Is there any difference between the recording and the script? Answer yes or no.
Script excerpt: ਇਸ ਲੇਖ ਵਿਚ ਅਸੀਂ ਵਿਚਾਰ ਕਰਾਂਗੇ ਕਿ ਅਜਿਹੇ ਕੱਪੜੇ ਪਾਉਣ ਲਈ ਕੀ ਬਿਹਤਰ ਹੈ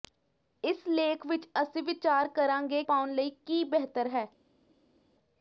yes